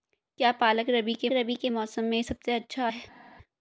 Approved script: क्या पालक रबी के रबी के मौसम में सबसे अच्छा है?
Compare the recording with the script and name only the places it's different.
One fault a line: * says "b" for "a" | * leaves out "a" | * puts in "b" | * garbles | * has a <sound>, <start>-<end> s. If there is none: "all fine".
all fine